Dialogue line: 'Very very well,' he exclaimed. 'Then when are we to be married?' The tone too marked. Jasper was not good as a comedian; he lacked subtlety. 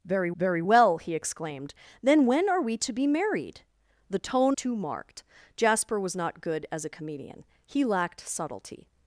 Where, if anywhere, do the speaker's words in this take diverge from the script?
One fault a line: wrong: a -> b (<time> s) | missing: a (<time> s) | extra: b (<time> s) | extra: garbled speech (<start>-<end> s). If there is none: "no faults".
no faults